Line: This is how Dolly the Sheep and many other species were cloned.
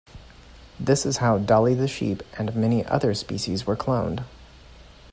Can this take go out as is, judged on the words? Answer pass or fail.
pass